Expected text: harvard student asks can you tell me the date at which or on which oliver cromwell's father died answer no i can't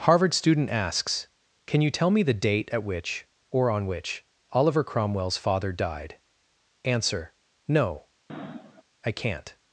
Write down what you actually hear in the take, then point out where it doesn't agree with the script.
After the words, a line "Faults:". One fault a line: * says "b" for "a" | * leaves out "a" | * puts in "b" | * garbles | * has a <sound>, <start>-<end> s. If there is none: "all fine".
harvard student asks can you tell me the date at which or on which oliver cromwell's father died answer no i can't
Faults:
* has a sniff, 8.3-8.8 s